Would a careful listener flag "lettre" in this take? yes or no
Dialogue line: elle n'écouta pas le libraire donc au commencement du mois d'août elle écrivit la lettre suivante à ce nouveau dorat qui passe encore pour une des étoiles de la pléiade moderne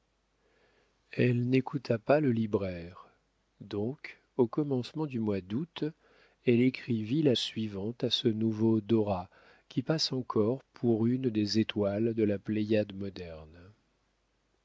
yes